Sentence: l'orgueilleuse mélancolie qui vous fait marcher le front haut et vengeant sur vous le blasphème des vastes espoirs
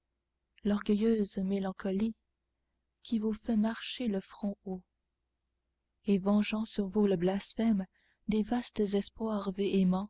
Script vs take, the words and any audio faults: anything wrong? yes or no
no